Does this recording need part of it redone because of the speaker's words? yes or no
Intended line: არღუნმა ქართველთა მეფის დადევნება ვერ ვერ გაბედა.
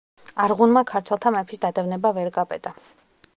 yes